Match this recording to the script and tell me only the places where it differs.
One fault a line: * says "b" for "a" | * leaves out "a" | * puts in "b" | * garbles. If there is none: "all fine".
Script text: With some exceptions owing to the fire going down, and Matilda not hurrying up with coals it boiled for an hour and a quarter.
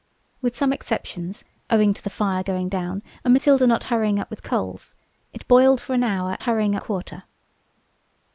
* says "hurrying" for "and"